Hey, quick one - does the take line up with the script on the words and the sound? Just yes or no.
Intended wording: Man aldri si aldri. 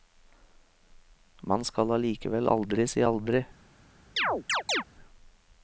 no